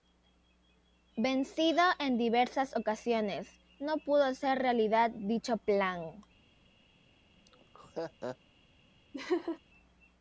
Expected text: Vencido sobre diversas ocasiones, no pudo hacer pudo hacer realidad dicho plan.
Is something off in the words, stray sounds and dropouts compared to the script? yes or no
yes